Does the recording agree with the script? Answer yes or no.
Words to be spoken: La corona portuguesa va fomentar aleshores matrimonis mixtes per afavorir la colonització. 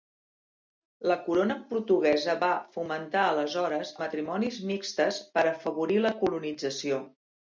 yes